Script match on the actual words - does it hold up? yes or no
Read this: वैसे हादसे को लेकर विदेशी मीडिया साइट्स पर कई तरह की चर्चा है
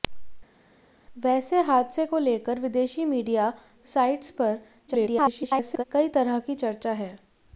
no